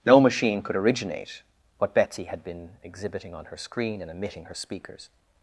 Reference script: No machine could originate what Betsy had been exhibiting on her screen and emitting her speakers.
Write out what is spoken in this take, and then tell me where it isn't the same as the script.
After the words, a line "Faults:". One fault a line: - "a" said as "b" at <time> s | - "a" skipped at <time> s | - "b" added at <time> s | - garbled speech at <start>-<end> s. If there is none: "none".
No machine could originate what Betsy had been exhibiting on her screen and emitting her speakers.
Faults:
none